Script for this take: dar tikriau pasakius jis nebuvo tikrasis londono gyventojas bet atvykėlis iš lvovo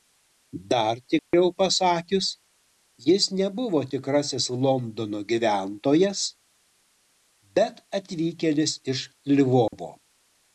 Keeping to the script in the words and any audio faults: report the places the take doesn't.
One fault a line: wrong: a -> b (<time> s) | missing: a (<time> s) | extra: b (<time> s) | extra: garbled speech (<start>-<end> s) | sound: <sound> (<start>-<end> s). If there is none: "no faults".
sound: dropout (1.2-1.3 s)
sound: dropout (9.7-9.7 s)